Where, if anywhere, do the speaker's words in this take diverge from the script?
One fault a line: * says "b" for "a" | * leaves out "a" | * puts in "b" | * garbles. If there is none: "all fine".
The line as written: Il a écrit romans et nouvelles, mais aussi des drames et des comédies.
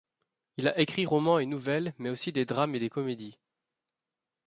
all fine